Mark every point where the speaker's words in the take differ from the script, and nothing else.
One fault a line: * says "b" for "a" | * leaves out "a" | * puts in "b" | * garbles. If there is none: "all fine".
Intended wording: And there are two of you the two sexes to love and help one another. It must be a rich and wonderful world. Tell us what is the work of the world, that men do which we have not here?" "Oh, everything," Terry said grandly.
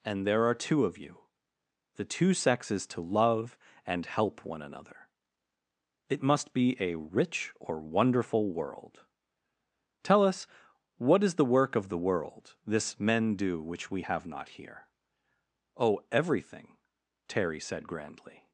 * says "or" for "and"
* says "this" for "that"